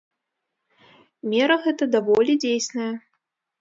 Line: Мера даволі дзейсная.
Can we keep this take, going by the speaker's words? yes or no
no